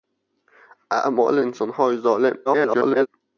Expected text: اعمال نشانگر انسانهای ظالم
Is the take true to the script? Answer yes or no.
no